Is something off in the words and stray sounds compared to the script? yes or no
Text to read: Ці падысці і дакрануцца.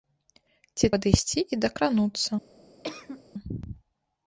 yes